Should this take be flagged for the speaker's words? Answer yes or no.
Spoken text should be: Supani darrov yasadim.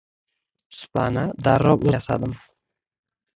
no